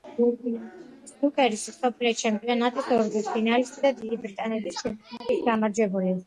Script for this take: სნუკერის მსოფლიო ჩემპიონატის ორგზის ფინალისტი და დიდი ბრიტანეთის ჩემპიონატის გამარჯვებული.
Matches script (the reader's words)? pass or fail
pass